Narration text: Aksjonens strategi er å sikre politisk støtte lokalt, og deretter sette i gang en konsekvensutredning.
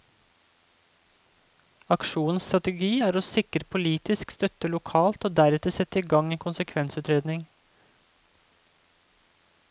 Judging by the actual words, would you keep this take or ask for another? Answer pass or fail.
pass